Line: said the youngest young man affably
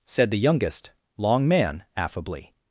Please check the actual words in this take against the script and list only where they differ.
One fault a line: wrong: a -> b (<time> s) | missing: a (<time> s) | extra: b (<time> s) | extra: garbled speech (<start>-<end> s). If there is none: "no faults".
wrong: young -> long (1.2 s)